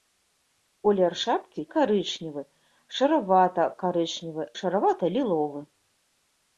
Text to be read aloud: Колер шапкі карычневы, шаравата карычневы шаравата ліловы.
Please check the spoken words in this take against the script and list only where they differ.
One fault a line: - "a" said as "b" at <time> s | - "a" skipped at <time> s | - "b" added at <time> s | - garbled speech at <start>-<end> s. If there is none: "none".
none